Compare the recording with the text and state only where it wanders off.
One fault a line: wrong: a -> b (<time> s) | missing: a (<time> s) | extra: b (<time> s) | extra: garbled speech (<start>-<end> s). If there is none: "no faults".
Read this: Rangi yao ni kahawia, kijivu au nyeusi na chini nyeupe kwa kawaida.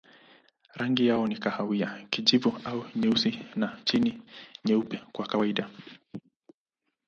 no faults